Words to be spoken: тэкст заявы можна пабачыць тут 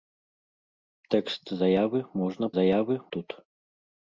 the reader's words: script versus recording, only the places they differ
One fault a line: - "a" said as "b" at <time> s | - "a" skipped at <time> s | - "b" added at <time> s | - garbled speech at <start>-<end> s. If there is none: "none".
- "пабачыць" said as "заявы" at 2.6 s